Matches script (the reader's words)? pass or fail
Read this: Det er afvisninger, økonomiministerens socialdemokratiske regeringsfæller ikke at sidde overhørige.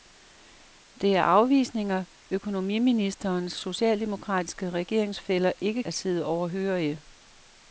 pass